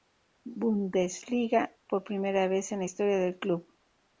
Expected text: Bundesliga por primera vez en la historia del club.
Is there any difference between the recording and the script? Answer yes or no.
no